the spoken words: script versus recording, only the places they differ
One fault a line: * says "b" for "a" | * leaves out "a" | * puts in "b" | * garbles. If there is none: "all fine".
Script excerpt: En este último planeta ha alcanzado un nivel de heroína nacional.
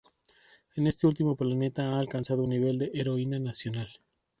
all fine